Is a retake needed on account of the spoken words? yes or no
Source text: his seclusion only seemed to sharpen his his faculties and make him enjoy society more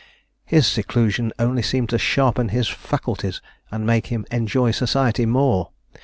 yes